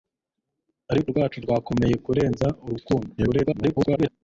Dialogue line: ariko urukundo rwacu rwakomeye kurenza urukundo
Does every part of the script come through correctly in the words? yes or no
no